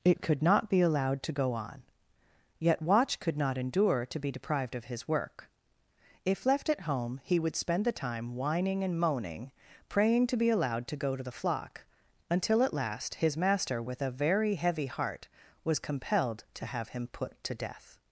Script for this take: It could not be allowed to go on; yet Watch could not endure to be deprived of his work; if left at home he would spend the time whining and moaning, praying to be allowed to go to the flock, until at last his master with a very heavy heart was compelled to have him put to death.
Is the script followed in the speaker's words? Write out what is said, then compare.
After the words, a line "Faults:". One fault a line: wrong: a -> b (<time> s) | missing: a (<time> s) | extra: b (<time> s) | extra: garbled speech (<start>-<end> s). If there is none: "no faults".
It could not be allowed to go on; yet Watch could not endure to be deprived of his work; if left at home he would spend the time whining and moaning, praying to be allowed to go to the flock, until at last his master with a very heavy heart was compelled to have him put to death.
Faults:
no faults